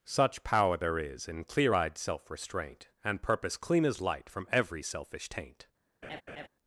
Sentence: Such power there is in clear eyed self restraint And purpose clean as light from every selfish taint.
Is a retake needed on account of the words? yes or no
no